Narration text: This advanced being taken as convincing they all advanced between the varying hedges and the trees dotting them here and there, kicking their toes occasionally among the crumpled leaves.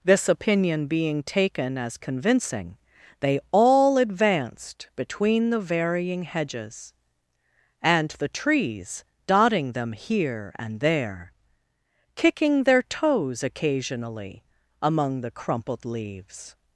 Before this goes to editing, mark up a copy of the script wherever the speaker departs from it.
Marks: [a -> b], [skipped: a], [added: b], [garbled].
This [advanced -> opinion] being taken as convincing they all advanced between the varying hedges and the trees dotting them here and there, kicking their toes occasionally among the crumpled leaves.